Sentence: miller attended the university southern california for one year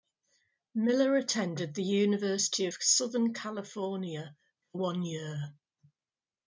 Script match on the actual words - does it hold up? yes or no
no